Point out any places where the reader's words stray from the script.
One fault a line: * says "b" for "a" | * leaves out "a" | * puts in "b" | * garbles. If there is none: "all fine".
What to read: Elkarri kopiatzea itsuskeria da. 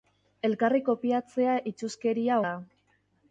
all fine